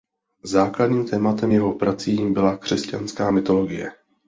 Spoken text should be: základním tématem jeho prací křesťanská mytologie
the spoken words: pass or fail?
fail